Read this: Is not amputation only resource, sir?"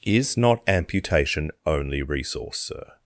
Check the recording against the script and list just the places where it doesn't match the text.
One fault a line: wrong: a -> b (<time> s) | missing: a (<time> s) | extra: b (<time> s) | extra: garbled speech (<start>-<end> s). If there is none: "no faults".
no faults